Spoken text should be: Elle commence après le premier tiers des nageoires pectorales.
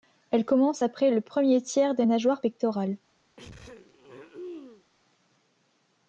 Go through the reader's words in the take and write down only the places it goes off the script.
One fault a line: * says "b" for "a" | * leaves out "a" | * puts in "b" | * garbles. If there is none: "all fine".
all fine